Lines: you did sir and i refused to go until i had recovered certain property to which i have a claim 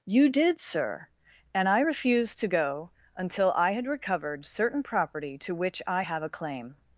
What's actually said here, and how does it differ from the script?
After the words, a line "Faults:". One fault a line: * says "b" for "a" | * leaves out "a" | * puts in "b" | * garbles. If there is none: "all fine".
you did sir and i refused to go until i had recovered certain property to which i have a claim
Faults:
all fine